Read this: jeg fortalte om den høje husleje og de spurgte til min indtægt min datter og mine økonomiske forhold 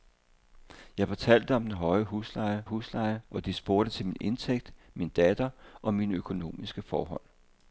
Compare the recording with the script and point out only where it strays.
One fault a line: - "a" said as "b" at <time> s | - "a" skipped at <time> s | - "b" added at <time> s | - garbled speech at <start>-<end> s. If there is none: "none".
- "husleje" added at 2.6 s